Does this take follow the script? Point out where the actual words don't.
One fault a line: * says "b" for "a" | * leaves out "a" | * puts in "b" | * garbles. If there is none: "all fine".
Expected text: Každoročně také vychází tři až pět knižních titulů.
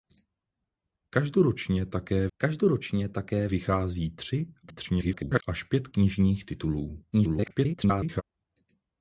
* puts in "každoročně také"
* garbles
* garbles